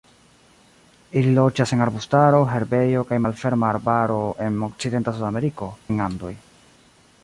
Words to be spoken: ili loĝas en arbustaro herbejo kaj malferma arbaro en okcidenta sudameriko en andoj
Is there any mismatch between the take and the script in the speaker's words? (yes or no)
no